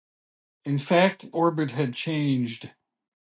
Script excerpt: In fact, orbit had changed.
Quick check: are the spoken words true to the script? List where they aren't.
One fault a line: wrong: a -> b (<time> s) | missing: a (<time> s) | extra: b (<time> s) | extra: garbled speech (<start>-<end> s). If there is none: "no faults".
no faults